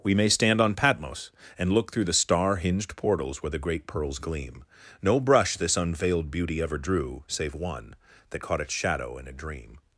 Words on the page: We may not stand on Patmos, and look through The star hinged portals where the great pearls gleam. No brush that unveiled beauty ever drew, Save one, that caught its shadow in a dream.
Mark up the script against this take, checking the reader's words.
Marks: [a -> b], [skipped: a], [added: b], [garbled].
We may [skipped: not] stand on Patmos, and look through The star hinged portals where the great pearls gleam. No brush [that -> this] unveiled beauty ever drew, Save one, that caught its shadow in a dream.